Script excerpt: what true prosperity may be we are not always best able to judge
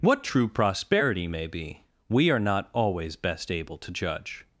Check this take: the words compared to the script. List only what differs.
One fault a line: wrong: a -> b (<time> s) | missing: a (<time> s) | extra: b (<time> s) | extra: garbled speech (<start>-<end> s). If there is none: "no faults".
no faults